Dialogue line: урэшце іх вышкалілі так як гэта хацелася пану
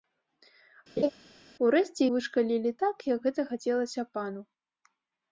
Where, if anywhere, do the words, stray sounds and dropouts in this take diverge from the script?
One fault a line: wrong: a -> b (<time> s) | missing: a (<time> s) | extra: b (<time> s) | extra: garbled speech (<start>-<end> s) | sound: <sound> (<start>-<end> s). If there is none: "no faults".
sound: laugh (1.0-1.1 s)
missing: іх (2.0 s)